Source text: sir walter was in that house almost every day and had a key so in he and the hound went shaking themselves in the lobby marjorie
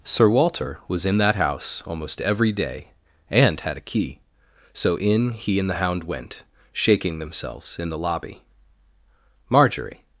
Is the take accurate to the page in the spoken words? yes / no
yes